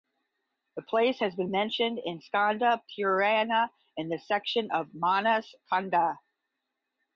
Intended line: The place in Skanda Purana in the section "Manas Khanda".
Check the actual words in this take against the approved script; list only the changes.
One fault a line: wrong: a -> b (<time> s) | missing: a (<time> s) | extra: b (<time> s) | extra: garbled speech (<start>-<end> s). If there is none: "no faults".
extra: has been mentioned (1.2 s)
extra: of (4.7 s)